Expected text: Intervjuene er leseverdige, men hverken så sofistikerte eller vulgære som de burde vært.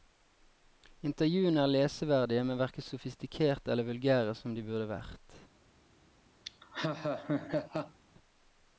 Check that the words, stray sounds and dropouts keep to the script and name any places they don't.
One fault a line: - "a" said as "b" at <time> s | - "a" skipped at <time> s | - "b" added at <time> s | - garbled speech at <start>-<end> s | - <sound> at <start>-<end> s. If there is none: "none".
- "så" skipped at 2.9 s
- laugh at 6.4-8.0 s